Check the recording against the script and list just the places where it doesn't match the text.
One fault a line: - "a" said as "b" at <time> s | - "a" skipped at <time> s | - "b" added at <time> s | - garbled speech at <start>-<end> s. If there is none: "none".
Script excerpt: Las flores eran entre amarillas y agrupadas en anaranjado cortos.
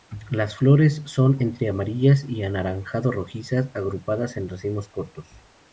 - "eran" said as "son" at 1.1 s
- "anaranjado rojizas" added at 2.4 s
- "anaranjado" said as "racimos" at 4.5 s